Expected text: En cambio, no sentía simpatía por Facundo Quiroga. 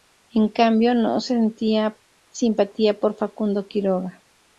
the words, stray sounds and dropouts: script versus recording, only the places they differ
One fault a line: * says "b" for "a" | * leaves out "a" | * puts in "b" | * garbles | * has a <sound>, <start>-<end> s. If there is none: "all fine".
all fine